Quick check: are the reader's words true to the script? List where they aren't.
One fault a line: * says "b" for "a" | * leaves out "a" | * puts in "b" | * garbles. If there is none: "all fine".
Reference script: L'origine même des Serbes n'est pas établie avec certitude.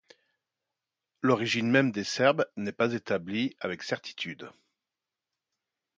all fine